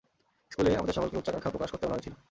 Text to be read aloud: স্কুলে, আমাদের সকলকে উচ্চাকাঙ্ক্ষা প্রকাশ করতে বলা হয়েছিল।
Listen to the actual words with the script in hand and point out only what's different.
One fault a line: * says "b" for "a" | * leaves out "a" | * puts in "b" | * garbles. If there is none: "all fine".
all fine